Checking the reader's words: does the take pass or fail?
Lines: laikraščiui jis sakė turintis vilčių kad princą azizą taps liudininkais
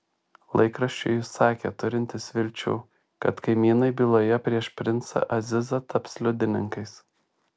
fail